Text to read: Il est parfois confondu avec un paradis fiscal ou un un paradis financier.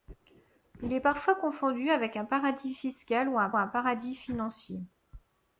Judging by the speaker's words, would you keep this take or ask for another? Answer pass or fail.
pass